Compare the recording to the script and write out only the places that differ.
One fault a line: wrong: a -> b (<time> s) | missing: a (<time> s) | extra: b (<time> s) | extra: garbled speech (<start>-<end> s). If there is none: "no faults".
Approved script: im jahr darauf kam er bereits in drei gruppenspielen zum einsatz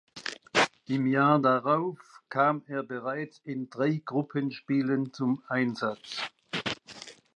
no faults